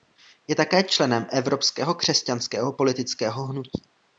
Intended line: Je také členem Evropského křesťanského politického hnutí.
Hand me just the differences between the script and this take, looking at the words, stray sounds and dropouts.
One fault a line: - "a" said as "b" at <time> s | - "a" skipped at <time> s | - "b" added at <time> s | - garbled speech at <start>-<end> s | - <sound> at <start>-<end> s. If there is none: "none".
none